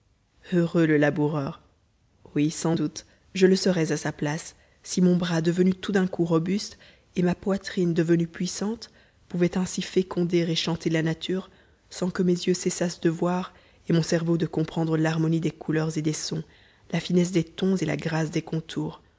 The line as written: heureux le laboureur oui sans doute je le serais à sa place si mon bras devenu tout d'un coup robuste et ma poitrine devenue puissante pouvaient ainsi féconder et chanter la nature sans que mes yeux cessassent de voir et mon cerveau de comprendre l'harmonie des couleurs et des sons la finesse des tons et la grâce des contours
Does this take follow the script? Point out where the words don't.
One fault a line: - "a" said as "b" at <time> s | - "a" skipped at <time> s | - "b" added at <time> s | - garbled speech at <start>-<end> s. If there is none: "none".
none